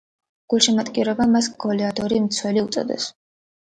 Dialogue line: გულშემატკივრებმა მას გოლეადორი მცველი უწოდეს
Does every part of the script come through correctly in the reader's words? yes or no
yes